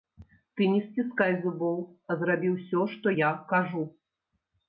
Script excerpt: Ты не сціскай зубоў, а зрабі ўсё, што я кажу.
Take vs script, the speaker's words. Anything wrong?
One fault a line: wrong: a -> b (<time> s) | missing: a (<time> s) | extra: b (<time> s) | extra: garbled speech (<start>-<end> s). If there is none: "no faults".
no faults